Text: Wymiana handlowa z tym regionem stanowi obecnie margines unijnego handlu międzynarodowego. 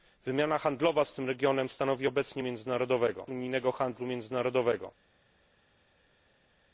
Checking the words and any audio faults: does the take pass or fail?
fail